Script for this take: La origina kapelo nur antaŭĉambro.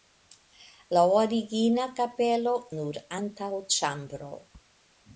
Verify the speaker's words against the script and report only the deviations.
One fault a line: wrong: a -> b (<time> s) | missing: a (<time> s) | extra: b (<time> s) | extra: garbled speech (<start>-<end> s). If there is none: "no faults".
no faults